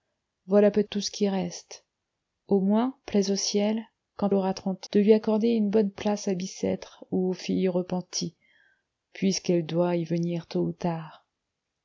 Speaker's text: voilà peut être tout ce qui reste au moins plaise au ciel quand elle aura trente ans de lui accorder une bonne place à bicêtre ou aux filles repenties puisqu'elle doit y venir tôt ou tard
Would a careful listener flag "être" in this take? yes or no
yes